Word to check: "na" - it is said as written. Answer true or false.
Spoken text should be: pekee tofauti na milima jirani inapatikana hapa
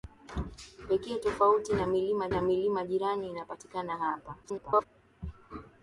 true